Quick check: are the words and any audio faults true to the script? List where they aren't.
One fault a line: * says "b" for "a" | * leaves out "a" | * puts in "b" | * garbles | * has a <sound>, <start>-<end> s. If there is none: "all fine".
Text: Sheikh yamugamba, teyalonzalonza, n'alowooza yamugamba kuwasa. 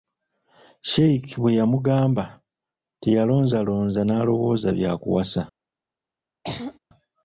* puts in "bwe"
* says "bya" for "yamugamba"
* has a throat clearing, 6.4-6.8 s